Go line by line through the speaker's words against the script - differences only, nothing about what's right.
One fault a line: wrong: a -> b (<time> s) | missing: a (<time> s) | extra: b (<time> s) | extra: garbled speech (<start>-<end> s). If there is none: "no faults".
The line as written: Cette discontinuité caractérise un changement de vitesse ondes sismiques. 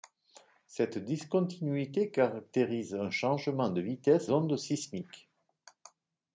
no faults